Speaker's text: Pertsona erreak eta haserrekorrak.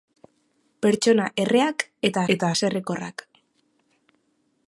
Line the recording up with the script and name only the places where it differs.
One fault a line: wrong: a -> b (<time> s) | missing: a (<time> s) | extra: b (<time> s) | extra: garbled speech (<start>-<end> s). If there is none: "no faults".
extra: eta (2.3 s)